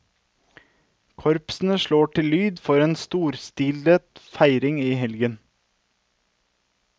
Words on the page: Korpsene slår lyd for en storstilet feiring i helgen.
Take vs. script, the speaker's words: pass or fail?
fail